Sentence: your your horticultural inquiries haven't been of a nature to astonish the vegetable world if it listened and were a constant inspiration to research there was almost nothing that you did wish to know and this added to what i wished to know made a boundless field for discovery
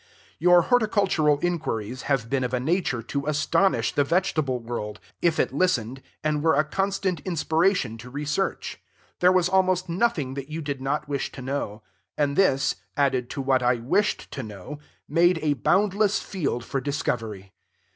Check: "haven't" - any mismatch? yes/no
yes